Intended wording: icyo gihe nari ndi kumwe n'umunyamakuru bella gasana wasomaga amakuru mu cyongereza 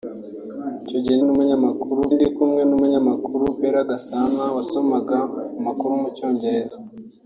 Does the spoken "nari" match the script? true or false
false